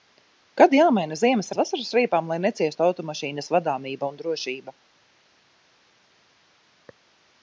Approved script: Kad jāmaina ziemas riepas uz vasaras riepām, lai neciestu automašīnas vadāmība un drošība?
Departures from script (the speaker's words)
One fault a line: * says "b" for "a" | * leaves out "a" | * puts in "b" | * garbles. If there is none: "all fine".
* leaves out "riepas"